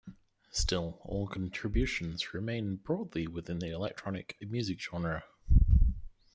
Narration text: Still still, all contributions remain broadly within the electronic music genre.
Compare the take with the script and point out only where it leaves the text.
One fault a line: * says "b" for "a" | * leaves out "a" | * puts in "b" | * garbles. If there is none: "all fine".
* leaves out "still"